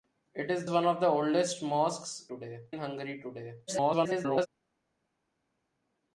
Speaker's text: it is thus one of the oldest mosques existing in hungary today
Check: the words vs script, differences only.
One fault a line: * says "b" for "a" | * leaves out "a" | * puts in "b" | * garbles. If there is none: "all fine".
* leaves out "thus"
* says "today" for "existing"
* garbles